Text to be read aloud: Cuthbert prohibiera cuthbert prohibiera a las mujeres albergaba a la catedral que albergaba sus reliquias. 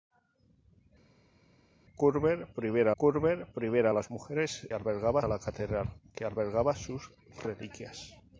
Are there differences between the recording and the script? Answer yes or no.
no